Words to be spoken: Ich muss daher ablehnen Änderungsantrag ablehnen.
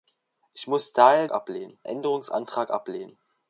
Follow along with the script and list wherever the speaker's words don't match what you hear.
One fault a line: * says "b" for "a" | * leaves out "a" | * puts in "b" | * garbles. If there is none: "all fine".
all fine